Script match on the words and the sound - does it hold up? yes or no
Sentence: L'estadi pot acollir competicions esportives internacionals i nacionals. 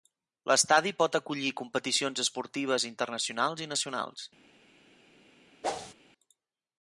no